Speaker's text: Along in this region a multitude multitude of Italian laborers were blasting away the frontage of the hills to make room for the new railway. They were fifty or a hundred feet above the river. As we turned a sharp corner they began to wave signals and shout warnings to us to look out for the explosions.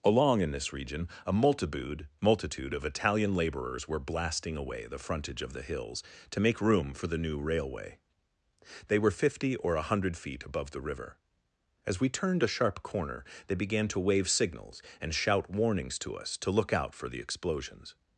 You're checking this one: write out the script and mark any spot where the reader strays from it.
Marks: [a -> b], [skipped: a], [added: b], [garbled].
Along in this region a multitude multitude of Italian laborers were blasting away the frontage of the hills to make room for the new railway. They were fifty or a hundred feet above the river. As we turned a sharp corner they began to wave signals and shout warnings to us to look out for the explosions.